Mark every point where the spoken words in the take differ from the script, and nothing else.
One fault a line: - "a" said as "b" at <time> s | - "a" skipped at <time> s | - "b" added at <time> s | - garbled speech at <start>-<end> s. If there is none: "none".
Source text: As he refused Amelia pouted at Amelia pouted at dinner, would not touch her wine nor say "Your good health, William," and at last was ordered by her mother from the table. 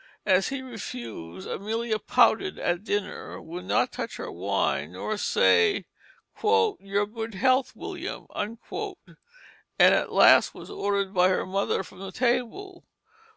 - "Amelia pouted at" skipped at 2.8 s